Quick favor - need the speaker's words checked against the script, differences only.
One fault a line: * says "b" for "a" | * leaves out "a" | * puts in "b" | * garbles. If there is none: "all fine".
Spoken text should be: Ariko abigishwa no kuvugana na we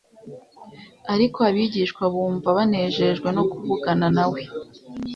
* puts in "bumva banejejwe"